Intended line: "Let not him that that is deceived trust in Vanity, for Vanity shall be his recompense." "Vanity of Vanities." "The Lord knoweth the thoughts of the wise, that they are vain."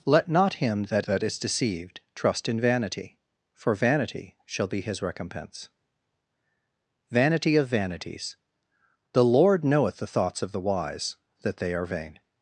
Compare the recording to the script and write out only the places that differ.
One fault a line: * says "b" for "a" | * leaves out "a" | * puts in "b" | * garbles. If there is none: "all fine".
all fine